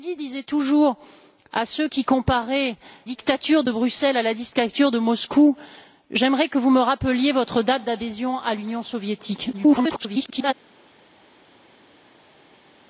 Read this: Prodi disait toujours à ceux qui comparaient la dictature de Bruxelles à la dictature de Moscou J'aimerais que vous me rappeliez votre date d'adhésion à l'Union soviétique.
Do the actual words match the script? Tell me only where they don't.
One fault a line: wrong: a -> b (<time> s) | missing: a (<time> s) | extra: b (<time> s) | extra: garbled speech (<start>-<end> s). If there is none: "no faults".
missing: la (2.8 s)
extra: garbled speech (9.5-10.5 s)